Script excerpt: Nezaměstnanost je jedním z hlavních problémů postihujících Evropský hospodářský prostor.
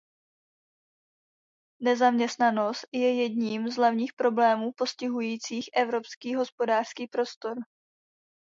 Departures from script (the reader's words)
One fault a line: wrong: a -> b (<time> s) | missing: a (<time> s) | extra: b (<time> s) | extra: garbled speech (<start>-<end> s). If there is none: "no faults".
no faults